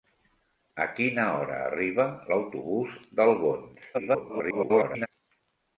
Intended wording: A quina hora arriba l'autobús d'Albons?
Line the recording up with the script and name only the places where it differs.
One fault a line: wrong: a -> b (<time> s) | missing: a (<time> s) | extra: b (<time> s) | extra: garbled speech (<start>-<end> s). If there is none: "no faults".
extra: garbled speech (3.9-5.1 s)